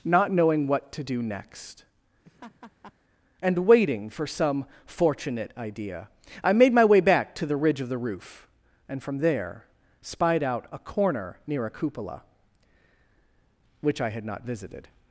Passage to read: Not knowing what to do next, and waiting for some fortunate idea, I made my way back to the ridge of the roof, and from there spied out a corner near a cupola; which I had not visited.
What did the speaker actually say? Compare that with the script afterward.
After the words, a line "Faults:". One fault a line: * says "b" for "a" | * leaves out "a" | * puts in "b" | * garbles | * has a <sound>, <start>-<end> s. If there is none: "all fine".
Not knowing what to do next, and waiting for some fortunate idea, I made my way back to the ridge of the roof, and from there spied out a corner near a cupola; which I had not visited.
Faults:
* has a laugh, 2.2-2.9 s